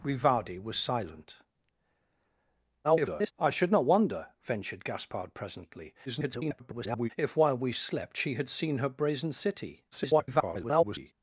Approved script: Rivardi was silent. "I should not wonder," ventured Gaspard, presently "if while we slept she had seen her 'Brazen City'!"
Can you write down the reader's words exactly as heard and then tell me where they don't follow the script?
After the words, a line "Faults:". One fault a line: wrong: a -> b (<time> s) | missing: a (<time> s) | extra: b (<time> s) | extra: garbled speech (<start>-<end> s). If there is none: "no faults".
Rivardi was silent. [garbled] "I should not wonder," ventured Gaspard, presently [garbled] "if while we slept she had seen her 'Brazen City'!" [garbled]
Faults:
extra: garbled speech (2.8-3.3 s)
extra: garbled speech (6.1-7.1 s)
extra: garbled speech (9.9-11.1 s)